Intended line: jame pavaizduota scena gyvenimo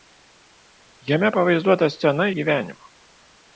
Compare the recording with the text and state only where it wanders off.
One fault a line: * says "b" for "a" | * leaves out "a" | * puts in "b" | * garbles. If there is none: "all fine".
all fine